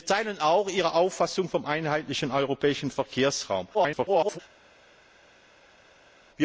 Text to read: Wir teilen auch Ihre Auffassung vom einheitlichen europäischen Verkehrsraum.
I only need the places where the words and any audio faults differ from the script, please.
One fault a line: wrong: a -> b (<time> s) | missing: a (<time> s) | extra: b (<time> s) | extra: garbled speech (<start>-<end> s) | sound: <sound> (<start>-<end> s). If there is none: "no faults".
extra: garbled speech (3.7-4.4 s)